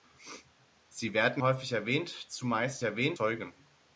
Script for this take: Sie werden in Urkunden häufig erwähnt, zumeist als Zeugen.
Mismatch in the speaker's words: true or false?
true